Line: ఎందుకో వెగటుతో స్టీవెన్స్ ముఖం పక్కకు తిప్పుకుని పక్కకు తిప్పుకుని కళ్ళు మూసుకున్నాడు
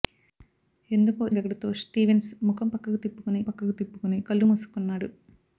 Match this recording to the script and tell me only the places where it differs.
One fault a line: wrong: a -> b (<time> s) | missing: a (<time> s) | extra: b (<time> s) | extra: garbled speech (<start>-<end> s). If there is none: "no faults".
no faults